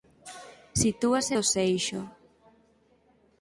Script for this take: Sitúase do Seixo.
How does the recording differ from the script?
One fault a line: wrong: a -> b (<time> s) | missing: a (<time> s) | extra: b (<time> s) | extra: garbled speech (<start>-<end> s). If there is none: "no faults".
no faults